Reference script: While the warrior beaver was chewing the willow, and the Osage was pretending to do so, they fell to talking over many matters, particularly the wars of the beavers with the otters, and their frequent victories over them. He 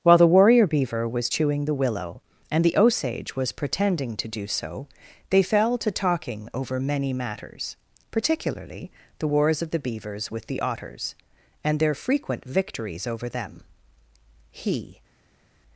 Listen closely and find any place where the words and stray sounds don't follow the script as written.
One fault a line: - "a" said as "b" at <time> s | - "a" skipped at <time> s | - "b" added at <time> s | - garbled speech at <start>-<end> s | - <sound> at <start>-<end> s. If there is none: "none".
none